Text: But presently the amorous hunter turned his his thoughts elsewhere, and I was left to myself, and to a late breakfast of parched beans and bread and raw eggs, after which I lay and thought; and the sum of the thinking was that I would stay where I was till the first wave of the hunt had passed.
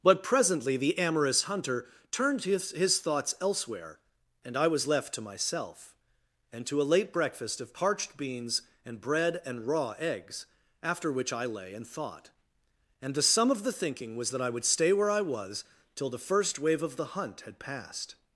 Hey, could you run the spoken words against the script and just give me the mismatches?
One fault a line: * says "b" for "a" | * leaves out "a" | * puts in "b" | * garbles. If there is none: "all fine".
all fine